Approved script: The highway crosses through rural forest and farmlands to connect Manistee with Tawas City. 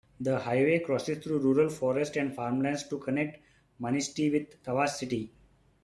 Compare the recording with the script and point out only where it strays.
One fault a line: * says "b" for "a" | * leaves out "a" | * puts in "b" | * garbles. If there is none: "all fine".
all fine